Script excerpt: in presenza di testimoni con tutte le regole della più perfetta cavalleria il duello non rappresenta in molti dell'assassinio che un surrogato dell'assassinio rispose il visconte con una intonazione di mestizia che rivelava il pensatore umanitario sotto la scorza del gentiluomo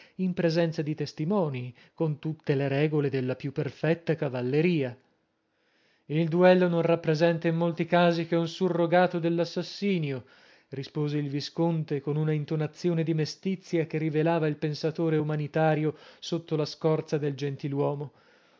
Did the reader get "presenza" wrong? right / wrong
right